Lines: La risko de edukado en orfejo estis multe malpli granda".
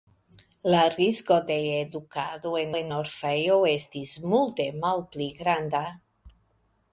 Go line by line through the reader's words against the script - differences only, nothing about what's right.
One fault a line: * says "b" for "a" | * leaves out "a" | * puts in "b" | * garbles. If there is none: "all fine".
* puts in "en"